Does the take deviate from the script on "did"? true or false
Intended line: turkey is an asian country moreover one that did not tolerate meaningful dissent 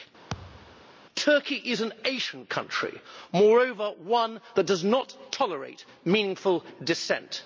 true